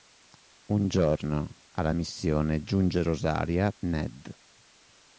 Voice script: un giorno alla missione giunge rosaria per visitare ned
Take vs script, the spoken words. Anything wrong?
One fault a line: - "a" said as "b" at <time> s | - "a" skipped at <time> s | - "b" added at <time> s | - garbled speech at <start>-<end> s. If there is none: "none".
- "per visitare" skipped at 3.7 s